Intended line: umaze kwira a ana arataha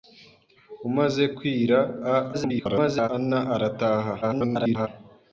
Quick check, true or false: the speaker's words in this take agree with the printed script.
false